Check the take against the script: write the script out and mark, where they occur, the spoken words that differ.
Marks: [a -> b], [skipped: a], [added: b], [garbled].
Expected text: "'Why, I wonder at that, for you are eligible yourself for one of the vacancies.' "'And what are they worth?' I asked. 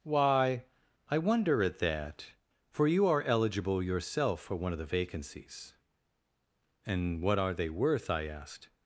"'Why, I wonder at that, for you are eligible yourself for one of the vacancies.' "'And what are they worth?' I asked.